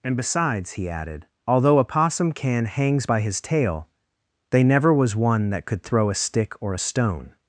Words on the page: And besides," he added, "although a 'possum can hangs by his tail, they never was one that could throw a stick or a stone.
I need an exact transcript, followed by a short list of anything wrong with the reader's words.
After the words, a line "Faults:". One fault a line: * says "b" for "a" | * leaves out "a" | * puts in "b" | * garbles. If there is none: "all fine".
And besides," he added, "although a 'possum can hangs by his tail, they never was one that could throw a stick or a stone.
Faults:
all fine